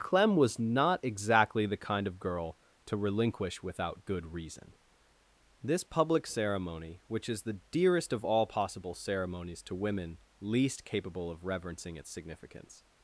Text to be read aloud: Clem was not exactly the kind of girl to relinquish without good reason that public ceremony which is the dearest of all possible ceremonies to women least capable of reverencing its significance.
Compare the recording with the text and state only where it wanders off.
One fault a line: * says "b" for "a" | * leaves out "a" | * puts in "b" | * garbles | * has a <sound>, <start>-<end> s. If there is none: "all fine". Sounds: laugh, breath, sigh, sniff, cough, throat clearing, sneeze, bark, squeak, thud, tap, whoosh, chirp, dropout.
* says "this" for "that"